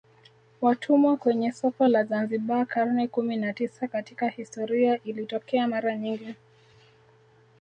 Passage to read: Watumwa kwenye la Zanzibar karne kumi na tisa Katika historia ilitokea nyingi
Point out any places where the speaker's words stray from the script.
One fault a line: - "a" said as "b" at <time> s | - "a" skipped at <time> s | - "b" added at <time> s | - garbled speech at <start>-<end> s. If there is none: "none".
- "soko" added at 1.5 s
- "mara" added at 5.6 s